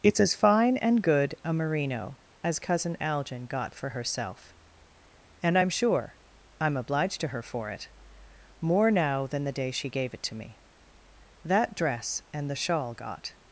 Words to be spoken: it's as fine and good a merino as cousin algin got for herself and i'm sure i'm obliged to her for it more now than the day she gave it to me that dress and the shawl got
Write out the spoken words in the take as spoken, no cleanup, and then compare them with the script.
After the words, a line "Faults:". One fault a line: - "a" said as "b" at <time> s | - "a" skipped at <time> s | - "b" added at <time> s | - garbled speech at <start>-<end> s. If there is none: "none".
it's as fine and good a merino as cousin algin got for herself and i'm sure i'm obliged to her for it more now than the day she gave it to me that dress and the shawl got
Faults:
none